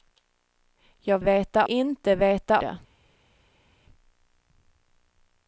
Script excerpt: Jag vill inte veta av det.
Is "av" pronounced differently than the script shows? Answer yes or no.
yes